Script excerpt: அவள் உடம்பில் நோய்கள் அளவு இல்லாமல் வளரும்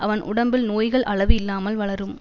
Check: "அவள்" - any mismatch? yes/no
yes